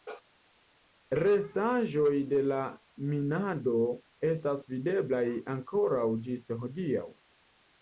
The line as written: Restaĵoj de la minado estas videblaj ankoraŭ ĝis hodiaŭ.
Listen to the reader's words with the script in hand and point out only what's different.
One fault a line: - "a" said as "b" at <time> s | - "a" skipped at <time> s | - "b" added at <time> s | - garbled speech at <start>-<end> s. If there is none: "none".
none